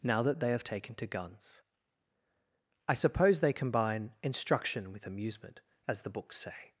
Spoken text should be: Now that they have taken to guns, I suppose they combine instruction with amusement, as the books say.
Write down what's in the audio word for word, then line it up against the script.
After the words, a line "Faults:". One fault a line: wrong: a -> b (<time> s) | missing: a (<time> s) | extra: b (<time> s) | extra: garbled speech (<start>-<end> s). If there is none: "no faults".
Now that they have taken to guns, I suppose they combine instruction with amusement, as the books say.
Faults:
no faults